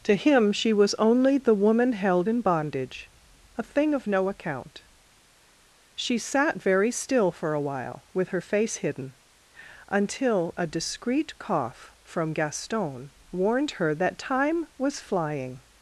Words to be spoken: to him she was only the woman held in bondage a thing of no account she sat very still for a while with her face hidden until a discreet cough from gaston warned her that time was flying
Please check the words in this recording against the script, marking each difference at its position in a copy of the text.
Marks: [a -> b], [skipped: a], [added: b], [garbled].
to him she was only the woman held in bondage a thing of no account she sat very still for a while with her face hidden until a discreet cough from gaston warned her that time was flying